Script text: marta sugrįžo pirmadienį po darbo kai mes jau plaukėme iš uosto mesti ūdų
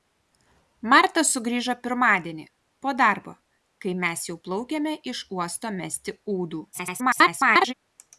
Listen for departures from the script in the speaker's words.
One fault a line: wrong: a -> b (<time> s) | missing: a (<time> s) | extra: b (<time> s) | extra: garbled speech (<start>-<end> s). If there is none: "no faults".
extra: garbled speech (6.7-7.7 s)